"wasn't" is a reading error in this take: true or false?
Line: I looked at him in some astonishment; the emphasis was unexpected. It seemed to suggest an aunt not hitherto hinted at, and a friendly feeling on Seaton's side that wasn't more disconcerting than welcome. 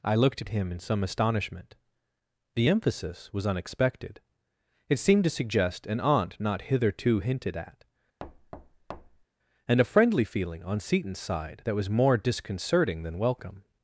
true